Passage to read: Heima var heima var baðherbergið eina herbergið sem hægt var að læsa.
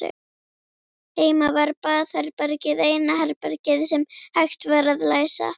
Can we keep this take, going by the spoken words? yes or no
no